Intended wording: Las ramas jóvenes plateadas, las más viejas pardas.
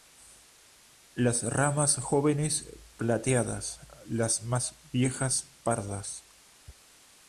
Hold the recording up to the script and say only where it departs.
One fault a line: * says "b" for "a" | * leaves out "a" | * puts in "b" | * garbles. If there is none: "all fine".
all fine